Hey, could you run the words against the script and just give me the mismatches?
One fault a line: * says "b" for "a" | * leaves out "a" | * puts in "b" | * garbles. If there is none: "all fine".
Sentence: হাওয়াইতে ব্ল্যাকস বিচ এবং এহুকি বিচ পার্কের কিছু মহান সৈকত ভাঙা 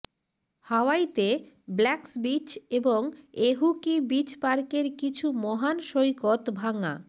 all fine